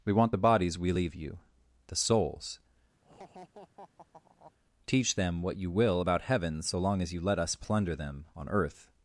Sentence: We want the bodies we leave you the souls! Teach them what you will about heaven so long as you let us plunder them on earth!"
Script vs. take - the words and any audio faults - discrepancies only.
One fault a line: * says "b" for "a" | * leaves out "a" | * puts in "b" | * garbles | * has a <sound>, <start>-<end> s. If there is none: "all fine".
* has a laugh, 3.0-4.5 s